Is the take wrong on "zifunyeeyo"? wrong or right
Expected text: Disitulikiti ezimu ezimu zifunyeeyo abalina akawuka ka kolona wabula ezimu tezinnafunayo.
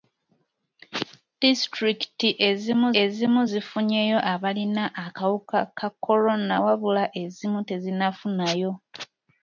right